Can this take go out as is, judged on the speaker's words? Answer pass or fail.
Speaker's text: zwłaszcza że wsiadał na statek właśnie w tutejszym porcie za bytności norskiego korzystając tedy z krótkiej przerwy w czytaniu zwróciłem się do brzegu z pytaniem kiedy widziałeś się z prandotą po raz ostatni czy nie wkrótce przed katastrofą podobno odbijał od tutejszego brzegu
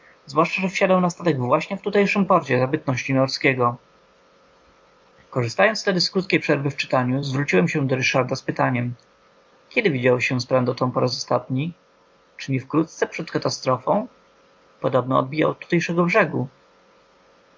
fail